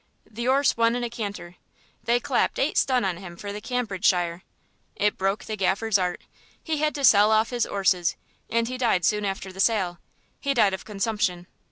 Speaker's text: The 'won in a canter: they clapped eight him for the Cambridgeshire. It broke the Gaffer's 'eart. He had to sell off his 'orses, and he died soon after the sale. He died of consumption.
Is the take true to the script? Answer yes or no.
no